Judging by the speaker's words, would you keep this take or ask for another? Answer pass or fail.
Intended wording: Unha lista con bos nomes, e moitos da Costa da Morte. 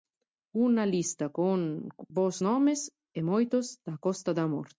pass